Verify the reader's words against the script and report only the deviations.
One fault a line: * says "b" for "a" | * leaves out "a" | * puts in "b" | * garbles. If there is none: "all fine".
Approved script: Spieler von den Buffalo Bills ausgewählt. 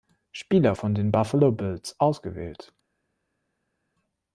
all fine